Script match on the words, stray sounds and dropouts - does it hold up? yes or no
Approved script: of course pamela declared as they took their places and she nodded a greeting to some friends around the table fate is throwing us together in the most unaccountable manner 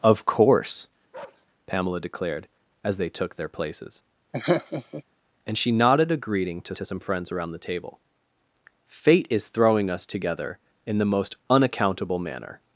no